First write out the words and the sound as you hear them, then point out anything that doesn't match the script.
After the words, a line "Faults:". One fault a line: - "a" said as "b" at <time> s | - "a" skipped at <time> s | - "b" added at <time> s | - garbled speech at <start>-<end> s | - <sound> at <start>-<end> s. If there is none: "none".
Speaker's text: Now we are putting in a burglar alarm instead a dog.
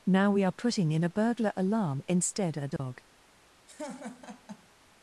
Now we are putting in a burglar alarm instead a dog.
Faults:
- dropout at 2.8-2.8 s
- laugh at 3.7-4.7 s